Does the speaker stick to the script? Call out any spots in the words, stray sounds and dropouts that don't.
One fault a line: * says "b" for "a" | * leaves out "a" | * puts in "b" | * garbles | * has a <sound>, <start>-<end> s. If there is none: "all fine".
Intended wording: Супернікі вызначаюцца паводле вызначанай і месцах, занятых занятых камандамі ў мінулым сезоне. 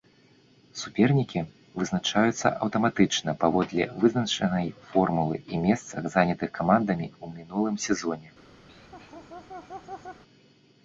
* puts in "аўтаматычна"
* puts in "формулы"
* leaves out "занятых"
* has a laugh, 8.7-10.2 s